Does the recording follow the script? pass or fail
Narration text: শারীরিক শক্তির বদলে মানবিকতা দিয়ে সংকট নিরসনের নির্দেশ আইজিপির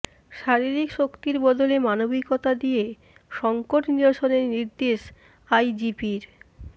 pass